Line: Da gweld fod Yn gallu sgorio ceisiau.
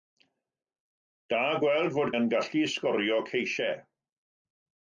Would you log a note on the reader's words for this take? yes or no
no